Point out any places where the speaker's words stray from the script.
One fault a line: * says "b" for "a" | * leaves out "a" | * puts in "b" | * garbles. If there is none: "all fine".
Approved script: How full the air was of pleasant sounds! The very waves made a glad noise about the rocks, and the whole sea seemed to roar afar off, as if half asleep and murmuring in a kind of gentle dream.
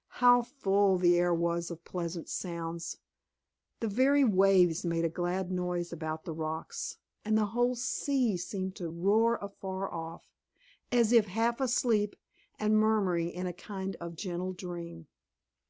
all fine